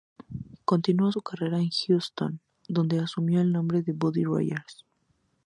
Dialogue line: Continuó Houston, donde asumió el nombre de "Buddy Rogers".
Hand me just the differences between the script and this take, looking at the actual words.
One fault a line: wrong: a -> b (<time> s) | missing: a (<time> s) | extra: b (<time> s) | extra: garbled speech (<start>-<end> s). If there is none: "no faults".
extra: su carrera en (1.1 s)